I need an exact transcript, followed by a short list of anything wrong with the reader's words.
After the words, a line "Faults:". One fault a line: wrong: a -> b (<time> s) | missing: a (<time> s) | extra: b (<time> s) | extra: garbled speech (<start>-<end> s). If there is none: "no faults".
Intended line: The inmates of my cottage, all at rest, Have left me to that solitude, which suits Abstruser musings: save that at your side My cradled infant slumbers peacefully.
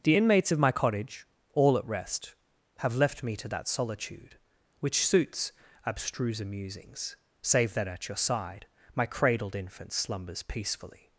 The inmates of my cottage, all at rest, Have left me to that solitude, which suits Abstruser musings: save that at your side My cradled infant slumbers peacefully.
Faults:
no faults